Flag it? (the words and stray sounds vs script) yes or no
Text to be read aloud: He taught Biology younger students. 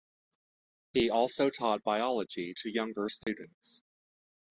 yes